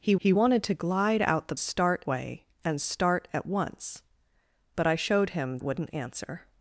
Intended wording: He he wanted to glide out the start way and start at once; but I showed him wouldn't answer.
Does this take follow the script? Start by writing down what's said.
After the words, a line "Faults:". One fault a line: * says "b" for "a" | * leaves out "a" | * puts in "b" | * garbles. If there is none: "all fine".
He he wanted to glide out the start way and start at once; but I showed him wouldn't answer.
Faults:
all fine